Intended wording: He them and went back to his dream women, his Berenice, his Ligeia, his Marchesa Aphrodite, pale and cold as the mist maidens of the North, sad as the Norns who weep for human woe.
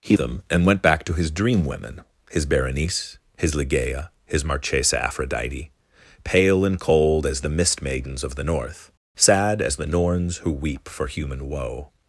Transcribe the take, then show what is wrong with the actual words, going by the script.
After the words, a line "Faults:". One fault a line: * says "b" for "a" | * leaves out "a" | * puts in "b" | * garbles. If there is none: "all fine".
He them and went back to his dream women, his Berenice, his Ligeia, his Marchesa Aphrodite, pale and cold as the mist maidens of the North, sad as the Norns who weep for human woe.
Faults:
all fine